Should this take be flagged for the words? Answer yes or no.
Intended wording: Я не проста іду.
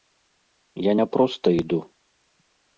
no